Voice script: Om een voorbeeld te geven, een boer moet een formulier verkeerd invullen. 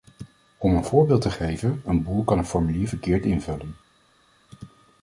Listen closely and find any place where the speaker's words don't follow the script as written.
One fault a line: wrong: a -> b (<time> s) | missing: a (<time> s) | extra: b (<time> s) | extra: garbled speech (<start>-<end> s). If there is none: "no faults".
wrong: moet -> kan (2.2 s)